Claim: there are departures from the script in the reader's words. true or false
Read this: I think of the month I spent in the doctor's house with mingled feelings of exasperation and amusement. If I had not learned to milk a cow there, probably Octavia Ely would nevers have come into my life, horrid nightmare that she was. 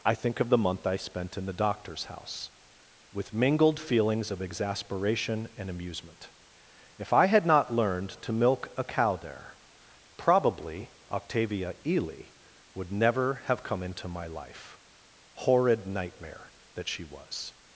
true